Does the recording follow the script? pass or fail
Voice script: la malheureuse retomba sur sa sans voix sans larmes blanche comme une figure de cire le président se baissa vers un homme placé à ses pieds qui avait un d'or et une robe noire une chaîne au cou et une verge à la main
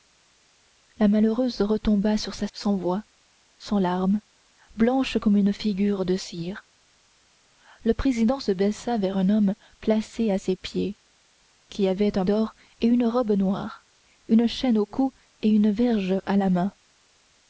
pass